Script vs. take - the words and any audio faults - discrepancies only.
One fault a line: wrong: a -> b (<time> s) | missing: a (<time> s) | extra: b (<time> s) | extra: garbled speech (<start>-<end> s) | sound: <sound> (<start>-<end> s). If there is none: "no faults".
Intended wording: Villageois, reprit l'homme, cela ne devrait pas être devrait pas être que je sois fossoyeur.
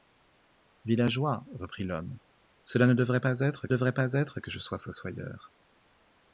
no faults